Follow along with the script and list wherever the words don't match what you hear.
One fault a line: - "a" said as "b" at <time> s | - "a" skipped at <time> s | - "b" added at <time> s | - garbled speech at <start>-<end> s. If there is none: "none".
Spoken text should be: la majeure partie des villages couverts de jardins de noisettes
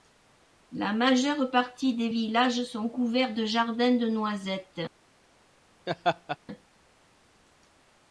- "sont" added at 2.6 s